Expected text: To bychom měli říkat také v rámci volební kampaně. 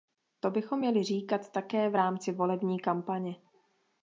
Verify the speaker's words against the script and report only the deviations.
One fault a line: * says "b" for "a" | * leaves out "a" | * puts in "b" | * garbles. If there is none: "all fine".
all fine